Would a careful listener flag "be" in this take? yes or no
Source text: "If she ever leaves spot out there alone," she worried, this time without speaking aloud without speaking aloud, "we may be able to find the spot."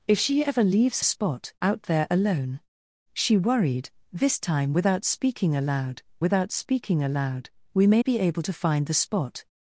no